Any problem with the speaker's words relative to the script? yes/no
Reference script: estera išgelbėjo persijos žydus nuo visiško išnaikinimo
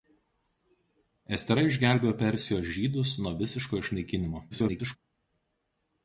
yes